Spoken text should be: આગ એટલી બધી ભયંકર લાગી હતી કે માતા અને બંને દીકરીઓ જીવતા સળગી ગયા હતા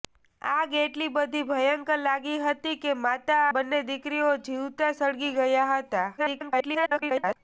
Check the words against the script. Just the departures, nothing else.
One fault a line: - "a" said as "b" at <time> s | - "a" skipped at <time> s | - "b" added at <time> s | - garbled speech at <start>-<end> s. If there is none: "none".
- "અને" skipped at 3.5 s
- garbled speech at 6.2-7.4 s